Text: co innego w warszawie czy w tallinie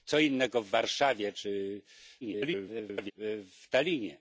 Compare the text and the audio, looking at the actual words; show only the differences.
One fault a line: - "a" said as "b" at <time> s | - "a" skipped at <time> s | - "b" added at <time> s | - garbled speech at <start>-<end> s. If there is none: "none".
- garbled speech at 2.2-3.1 s